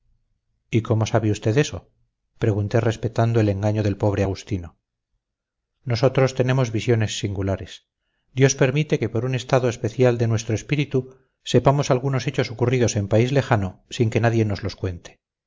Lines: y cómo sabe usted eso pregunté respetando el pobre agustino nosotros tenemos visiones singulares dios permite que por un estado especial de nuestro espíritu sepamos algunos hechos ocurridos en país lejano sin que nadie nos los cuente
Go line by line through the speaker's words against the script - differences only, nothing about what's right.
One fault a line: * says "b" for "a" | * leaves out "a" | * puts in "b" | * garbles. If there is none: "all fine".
* puts in "engaño del"